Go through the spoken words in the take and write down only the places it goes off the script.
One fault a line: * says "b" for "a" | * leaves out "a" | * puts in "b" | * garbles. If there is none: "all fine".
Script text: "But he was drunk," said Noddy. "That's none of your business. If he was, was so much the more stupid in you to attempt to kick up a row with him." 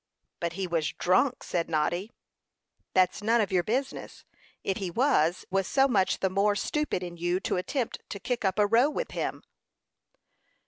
all fine